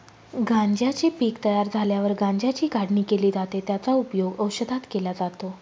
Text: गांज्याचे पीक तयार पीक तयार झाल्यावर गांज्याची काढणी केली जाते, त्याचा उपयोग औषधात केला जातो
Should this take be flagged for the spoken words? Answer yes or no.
yes